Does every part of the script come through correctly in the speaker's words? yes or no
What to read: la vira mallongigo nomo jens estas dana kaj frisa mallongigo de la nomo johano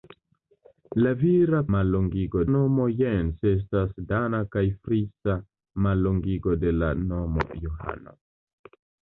yes